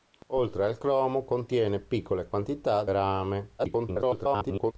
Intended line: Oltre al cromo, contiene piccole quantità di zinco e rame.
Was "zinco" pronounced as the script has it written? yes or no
no